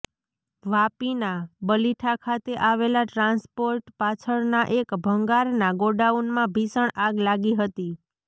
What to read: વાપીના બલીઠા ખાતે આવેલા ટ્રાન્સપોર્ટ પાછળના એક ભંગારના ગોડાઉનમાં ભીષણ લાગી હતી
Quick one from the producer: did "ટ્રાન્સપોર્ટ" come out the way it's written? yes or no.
yes